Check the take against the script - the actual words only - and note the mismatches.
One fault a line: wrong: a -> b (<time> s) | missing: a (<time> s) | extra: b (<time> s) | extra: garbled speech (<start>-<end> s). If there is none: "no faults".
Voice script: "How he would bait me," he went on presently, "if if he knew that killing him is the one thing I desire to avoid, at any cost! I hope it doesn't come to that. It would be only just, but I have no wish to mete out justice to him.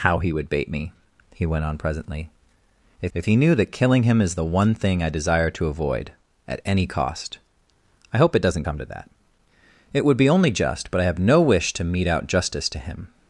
no faults